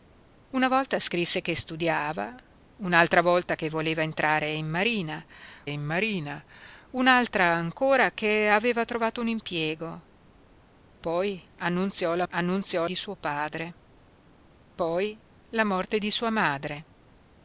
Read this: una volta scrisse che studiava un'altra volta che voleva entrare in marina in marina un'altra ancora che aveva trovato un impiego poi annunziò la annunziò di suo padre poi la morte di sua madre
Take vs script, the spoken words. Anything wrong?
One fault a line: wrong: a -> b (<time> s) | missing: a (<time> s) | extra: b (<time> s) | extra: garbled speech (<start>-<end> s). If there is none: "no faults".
no faults